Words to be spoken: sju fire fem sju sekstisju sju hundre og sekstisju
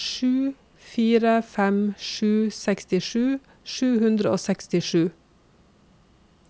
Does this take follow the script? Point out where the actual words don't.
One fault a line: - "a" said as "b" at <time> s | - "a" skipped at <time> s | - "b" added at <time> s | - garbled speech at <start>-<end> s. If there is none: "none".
none